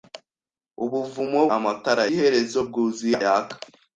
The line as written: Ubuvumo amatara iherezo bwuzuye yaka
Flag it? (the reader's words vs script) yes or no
no